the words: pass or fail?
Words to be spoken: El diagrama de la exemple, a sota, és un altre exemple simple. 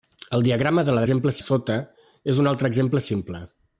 pass